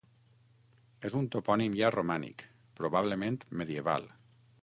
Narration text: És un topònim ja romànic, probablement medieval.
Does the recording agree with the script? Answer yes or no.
yes